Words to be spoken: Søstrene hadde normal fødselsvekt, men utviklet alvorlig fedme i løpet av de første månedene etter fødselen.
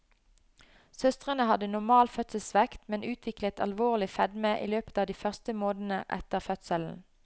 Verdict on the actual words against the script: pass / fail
pass